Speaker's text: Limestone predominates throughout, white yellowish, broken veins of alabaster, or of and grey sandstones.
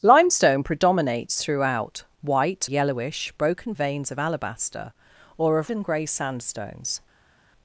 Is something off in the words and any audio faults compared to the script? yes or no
no